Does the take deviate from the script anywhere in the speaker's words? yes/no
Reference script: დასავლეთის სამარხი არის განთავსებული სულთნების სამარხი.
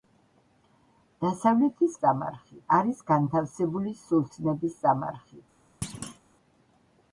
no